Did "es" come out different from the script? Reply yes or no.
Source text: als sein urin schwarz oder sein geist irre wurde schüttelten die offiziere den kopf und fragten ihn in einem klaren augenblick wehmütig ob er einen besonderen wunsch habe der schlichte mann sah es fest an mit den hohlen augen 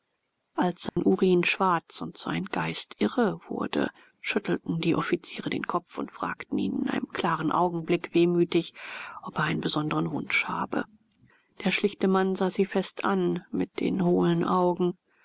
yes